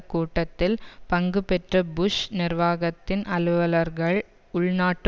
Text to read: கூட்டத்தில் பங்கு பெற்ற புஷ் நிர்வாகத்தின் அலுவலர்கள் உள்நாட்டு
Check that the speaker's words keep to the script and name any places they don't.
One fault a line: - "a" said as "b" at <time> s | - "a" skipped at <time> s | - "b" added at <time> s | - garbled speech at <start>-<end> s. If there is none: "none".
none